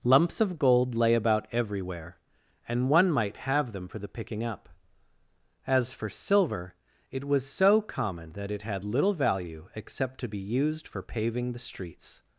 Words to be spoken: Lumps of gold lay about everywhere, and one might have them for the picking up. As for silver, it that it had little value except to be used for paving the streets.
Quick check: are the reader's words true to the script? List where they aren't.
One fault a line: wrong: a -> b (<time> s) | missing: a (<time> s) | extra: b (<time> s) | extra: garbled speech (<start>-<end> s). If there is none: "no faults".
extra: was so common (7.2 s)